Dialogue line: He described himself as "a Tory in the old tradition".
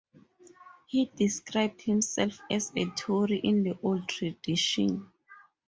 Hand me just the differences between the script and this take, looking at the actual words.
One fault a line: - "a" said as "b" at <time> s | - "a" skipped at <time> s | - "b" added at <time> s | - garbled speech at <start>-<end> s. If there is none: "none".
none